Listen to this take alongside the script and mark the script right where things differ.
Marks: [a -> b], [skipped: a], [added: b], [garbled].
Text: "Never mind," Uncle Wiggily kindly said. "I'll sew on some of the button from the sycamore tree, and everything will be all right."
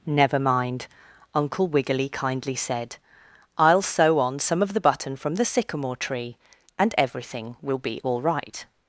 "Never mind," Uncle Wiggily kindly said. "I'll sew on some of the button from the sycamore tree, and everything will be all right."